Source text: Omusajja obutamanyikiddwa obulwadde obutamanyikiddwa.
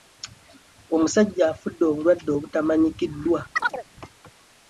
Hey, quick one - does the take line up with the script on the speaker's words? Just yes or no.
no